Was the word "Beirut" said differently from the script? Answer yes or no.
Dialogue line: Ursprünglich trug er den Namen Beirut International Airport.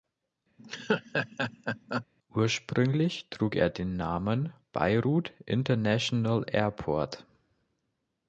no